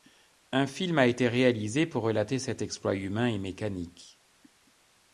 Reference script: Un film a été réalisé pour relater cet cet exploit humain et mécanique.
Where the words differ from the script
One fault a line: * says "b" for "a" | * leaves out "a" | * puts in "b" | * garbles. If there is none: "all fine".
* leaves out "cet"